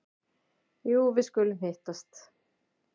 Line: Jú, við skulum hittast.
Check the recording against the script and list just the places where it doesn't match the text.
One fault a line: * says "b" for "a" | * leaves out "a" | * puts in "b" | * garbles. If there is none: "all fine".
all fine